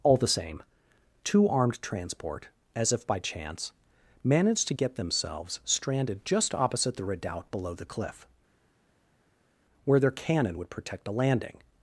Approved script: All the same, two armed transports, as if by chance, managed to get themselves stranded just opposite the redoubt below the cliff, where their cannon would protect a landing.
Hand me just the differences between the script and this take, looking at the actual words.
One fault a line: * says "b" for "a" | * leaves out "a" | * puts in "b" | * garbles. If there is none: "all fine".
* says "transport" for "transports"